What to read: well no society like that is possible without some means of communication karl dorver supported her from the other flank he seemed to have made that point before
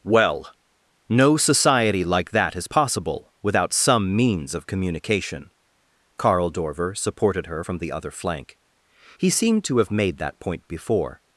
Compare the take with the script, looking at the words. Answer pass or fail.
pass